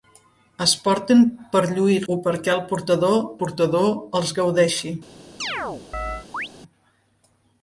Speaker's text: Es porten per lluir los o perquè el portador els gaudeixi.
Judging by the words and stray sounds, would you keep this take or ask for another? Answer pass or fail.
fail